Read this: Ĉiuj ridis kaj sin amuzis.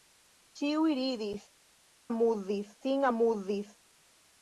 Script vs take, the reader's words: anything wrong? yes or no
yes